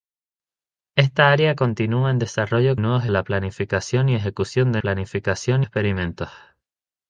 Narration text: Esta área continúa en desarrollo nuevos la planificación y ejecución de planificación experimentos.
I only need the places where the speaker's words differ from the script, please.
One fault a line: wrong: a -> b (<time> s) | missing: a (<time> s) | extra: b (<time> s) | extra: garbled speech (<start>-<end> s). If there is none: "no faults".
no faults